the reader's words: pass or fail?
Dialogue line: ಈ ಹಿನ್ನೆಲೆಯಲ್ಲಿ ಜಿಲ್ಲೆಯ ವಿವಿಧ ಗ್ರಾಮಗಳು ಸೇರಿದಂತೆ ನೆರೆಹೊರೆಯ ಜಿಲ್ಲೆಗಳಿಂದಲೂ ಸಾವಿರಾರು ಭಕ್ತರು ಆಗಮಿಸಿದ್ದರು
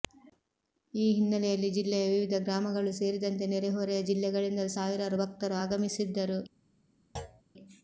pass